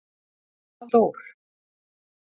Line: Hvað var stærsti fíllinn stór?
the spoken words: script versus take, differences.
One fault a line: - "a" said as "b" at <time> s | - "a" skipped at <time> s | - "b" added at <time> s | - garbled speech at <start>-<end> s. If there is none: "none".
- "var stærsti fíllinn" skipped at 0.9 s